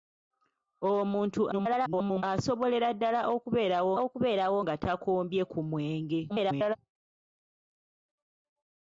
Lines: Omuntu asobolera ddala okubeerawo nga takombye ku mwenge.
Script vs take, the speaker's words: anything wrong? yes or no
yes